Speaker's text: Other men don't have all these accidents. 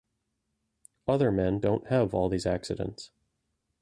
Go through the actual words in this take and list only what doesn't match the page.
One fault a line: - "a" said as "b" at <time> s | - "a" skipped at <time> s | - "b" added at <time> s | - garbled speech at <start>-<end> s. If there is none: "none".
none